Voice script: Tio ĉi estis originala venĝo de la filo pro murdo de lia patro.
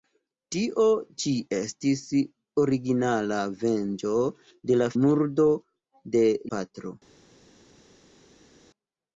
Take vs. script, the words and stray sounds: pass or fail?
fail